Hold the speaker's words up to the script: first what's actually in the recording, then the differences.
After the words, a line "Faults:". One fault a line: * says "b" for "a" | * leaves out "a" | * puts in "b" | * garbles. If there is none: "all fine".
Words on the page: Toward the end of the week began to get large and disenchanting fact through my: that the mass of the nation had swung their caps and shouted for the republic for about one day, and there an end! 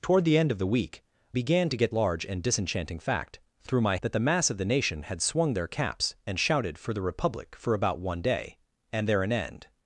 Toward the end of the week began to get large and disenchanting fact through my: that the mass of the nation had swung their caps and shouted for the republic for about one day, and there an end!
Faults:
all fine